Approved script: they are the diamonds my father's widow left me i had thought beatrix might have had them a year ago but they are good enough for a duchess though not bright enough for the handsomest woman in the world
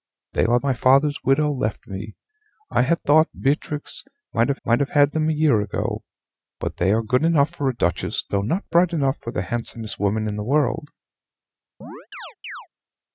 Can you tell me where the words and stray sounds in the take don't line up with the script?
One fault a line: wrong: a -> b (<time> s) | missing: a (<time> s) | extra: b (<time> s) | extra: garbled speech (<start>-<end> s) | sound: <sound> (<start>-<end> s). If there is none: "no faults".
missing: the diamonds (0.6 s)
extra: might have (4.6 s)
sound: chirp (11.8-12.7 s)